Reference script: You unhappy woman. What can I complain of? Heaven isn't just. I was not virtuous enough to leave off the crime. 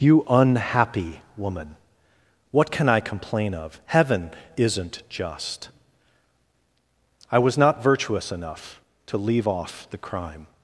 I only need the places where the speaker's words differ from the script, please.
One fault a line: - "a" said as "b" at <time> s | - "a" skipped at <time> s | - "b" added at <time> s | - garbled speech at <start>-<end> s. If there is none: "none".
none